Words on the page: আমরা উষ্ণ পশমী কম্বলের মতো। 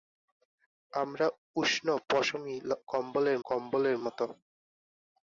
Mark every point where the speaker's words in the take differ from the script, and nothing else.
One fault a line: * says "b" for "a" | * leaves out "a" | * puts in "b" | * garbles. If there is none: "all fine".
* puts in "কম্বলের"